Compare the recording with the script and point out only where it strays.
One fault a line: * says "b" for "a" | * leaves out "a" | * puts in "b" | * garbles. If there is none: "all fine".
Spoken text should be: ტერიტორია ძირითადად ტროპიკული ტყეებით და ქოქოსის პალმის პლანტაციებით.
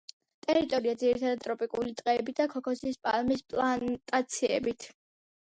all fine